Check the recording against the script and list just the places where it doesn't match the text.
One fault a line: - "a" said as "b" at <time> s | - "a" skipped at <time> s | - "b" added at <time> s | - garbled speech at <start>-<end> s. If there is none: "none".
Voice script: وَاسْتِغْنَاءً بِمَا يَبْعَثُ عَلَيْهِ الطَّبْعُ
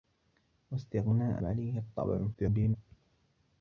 - "بِمَا يَبْعَثُ" skipped at 1.4 s
- garbled speech at 2.3-2.8 s